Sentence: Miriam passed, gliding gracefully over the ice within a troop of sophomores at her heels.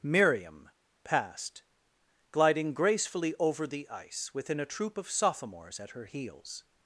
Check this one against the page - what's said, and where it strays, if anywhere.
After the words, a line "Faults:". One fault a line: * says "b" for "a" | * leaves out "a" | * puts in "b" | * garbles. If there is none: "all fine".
Miriam passed, gliding gracefully over the ice within a troop of sophomores at her heels.
Faults:
all fine